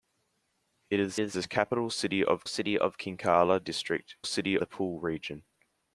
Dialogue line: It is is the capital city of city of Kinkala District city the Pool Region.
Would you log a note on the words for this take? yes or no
no